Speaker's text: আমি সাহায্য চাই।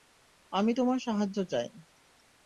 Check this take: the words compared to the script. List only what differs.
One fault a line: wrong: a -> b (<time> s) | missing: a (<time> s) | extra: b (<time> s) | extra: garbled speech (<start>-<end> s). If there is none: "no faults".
extra: তোমার (0.7 s)